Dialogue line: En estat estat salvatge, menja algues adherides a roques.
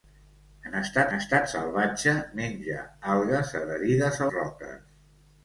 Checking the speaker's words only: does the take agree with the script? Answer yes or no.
yes